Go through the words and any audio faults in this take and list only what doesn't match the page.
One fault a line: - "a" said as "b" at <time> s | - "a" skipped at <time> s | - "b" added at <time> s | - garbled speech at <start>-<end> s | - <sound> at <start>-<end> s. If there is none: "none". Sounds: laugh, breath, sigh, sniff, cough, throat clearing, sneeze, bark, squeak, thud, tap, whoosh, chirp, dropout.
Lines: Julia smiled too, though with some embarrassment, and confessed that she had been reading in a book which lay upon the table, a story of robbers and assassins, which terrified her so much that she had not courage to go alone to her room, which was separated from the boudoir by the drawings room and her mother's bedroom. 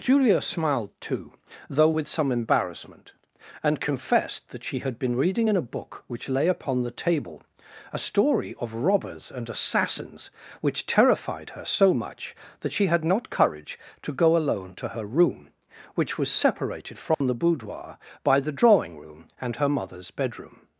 - dropout at 17.1-17.2 s
- "drawings" said as "drawing" at 18.5 s